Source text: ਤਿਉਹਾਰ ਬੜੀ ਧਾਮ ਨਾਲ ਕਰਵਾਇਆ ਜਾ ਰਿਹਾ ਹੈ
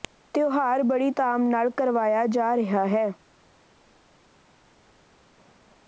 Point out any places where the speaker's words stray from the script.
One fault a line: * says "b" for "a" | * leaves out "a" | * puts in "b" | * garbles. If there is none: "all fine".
all fine